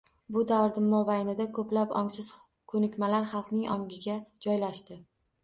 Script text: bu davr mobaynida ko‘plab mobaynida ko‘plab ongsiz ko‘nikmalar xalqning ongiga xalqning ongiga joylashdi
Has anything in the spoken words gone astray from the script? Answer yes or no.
yes